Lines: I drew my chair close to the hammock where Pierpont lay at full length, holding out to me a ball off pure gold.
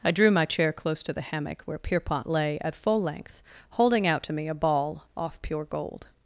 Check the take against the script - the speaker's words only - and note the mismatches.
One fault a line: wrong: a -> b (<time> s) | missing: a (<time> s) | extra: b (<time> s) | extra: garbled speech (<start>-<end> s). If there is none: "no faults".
no faults